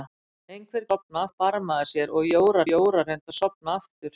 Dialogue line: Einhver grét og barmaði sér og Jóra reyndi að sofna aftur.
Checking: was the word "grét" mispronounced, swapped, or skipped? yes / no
yes